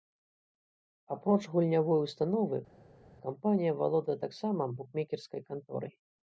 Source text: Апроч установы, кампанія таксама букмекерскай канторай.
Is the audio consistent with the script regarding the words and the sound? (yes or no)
no